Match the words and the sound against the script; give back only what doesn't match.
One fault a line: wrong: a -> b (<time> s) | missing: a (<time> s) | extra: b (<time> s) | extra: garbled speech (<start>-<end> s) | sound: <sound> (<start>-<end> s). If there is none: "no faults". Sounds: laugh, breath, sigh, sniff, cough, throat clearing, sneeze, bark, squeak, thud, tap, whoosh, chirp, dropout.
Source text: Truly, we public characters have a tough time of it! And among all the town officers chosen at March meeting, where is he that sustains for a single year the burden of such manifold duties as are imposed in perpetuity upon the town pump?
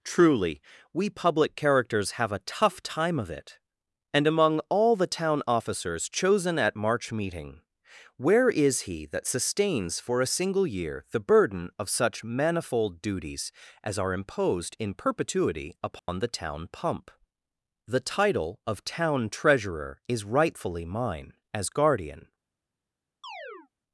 sound: dropout (16.0-16.1 s)
extra: The title of town treasurer is rightfully mine as guardian (17.9 s)
sound: chirp (23.2-23.7 s)